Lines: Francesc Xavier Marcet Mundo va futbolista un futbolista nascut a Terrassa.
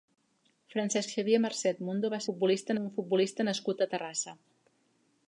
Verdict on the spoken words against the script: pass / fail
pass